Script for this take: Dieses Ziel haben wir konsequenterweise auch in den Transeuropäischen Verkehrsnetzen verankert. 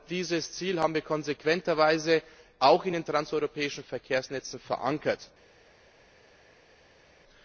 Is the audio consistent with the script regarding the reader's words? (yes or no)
yes